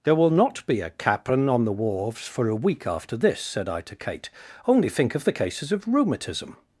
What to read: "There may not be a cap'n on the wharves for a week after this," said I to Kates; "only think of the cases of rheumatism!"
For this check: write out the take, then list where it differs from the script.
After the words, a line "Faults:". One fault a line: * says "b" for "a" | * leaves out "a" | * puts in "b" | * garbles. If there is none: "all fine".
"There will not be a cap'n on the wharves for a week after this," said I to Kate; "only think of the cases of rheumatism!"
Faults:
* says "will" for "may"
* says "Kate" for "Kates"